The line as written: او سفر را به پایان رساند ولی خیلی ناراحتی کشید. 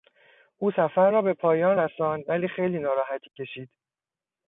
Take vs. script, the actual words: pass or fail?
pass